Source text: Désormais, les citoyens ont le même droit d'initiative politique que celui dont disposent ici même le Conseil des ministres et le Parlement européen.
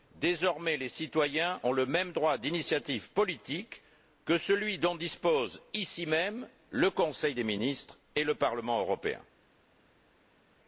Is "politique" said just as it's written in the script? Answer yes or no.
yes